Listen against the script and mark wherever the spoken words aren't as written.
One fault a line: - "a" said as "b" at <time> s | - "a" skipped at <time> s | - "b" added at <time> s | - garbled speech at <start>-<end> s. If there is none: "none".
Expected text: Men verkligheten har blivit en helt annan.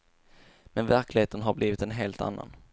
none